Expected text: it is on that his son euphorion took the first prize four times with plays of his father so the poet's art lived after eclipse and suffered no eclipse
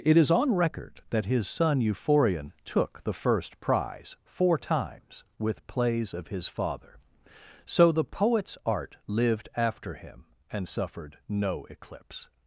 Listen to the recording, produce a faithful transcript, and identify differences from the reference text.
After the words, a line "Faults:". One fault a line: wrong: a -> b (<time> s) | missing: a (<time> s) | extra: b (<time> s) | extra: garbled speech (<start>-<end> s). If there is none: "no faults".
it is on record that his son euphorion took the first prize four times with plays of his father so the poet's art lived after him and suffered no eclipse
Faults:
extra: record (0.6 s)
wrong: eclipse -> him (10.0 s)